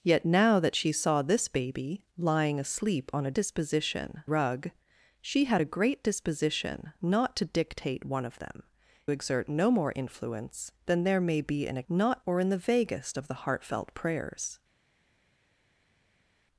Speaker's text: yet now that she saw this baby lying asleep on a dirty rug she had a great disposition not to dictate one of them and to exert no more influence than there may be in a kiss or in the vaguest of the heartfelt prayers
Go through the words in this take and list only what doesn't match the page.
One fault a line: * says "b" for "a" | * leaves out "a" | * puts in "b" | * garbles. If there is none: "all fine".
* says "disposition" for "dirty"
* leaves out "and to"
* says "not" for "kiss"